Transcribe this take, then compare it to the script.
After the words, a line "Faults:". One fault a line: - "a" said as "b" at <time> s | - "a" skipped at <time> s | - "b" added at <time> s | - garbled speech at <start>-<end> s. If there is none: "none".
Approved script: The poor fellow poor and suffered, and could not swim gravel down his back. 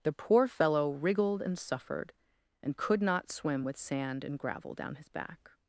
The poor fellow wriggled and suffered, and could not swim with sand and gravel down his back.
Faults:
- "poor" said as "wriggled" at 0.9 s
- "with sand and" added at 3.6 s